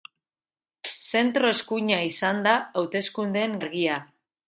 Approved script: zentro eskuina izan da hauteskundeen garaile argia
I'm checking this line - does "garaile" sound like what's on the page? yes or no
no